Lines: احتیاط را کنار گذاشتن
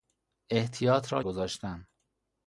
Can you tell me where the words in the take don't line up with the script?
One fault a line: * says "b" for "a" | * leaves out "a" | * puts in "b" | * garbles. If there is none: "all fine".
* leaves out "کنار"